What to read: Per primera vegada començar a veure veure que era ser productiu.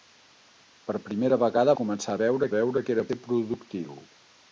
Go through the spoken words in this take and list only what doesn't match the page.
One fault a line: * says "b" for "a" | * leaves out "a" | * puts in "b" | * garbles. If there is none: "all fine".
all fine